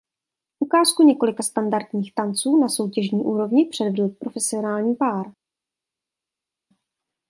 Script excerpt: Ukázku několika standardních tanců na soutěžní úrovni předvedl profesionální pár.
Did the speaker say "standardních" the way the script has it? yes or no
yes